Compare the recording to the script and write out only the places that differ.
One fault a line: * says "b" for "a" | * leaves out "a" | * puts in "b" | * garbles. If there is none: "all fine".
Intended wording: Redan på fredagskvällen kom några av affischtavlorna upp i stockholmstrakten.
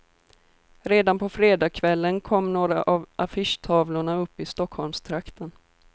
all fine